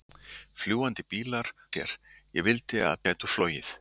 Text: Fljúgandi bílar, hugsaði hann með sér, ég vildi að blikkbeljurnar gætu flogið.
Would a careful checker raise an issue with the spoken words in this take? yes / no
yes